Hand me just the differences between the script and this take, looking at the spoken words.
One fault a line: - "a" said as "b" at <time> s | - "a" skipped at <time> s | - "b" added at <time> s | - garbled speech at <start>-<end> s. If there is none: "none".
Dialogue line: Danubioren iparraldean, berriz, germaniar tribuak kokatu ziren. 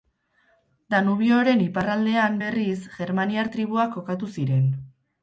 none